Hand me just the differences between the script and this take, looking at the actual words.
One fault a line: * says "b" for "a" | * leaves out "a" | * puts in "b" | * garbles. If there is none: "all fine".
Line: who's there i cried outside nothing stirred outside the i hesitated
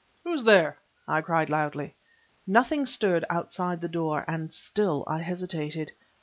* says "loudly" for "outside"
* puts in "door and still"